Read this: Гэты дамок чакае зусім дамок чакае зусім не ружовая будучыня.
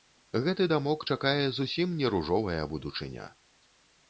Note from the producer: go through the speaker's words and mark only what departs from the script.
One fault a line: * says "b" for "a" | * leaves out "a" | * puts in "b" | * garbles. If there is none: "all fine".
* leaves out "дамок чакае зусім"